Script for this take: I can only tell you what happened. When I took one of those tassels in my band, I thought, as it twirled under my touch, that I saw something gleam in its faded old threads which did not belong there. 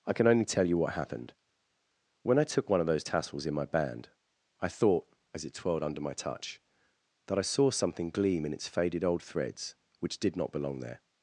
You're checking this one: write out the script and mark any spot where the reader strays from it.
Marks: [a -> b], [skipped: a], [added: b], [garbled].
I can only tell you what happened. When I took one of those tassels in my band, I thought, as it twirled under my touch, that I saw something gleam in its faded old threads which did not belong there.